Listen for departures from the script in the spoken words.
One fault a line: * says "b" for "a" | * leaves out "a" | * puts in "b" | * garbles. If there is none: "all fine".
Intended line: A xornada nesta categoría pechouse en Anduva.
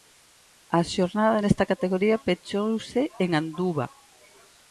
all fine